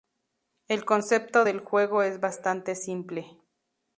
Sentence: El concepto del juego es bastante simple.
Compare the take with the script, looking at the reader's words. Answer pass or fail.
pass